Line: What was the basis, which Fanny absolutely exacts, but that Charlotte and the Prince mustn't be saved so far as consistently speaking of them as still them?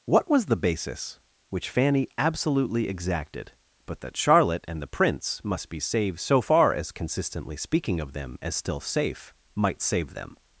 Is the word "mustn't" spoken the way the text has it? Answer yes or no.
no